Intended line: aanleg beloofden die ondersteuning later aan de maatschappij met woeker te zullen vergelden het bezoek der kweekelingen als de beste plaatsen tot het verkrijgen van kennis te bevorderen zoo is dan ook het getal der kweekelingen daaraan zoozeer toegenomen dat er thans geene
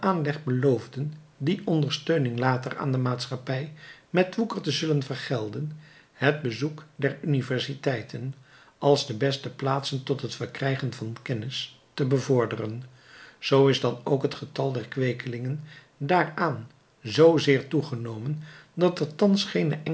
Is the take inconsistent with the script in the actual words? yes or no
yes